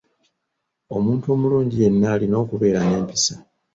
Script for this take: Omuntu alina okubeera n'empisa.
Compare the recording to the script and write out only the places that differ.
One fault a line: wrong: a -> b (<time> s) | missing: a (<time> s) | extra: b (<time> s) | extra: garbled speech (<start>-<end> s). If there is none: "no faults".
extra: omulungi yenna (1.4 s)